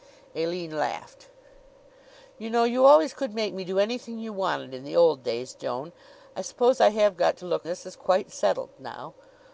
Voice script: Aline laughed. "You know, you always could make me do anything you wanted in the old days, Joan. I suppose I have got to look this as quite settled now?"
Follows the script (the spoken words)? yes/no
yes